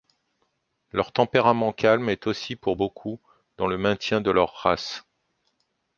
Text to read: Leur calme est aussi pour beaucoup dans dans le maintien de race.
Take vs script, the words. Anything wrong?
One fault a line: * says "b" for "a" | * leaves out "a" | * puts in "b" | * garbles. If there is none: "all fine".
* puts in "tempérament"
* leaves out "dans"
* puts in "leur"